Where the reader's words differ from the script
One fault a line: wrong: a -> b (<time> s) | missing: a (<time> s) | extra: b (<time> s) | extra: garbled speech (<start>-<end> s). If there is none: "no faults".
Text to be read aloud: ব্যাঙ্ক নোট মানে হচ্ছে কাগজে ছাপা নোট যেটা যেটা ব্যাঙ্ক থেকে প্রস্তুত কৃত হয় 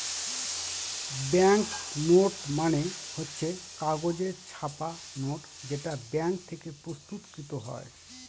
missing: যেটা (5.9 s)